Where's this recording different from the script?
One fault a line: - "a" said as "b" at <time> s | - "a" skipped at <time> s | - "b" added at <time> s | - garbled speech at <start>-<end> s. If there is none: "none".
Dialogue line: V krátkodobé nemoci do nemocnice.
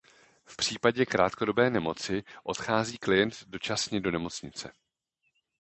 - "případě" added at 0.6 s
- "odchází klient dočasně" added at 2.4 s